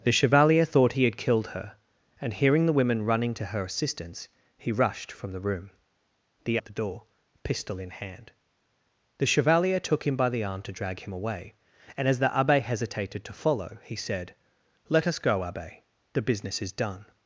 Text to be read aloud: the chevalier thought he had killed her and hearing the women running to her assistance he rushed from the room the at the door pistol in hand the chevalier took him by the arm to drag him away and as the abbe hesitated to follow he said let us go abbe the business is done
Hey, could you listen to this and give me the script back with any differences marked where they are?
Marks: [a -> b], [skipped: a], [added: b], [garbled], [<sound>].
the chevalier thought he had killed her and hearing the women running to her assistance he rushed from the room the at the door pistol in hand the chevalier took him by the arm to drag him away and as the abbe hesitated to follow he said let us go abbe the business is done